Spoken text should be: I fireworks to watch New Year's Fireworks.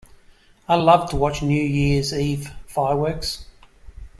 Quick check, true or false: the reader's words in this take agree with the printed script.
false